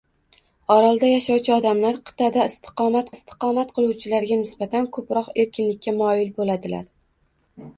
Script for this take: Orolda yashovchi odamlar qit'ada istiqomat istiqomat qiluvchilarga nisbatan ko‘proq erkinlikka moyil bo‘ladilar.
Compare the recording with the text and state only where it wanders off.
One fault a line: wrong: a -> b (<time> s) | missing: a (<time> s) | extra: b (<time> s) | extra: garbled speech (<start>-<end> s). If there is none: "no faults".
no faults